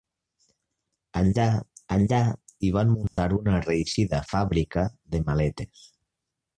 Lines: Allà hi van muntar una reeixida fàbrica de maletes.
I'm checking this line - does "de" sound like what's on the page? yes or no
yes